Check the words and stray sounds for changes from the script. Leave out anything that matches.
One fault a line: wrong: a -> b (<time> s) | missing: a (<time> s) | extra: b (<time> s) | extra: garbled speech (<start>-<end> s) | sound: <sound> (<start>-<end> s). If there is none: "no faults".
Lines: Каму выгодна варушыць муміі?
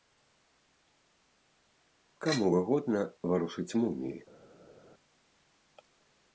no faults